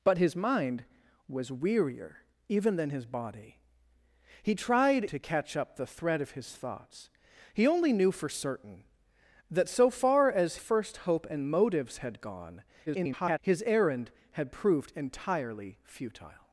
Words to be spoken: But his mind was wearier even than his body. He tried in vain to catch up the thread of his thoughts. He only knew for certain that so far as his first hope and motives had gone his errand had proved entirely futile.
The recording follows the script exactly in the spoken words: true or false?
false